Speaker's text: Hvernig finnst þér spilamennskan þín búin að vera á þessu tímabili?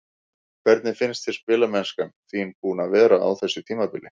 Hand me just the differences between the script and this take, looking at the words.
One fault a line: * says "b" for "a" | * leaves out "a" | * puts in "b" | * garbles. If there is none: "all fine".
all fine